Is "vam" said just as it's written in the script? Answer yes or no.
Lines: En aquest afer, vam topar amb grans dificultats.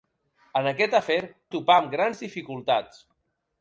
no